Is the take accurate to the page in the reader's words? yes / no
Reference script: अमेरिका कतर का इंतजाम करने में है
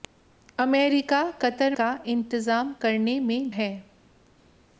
yes